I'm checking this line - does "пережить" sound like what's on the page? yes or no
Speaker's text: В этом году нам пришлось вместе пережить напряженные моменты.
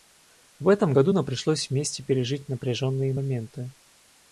yes